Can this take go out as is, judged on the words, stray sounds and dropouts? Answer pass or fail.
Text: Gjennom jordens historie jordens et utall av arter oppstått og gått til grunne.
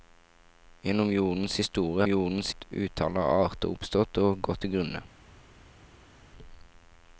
pass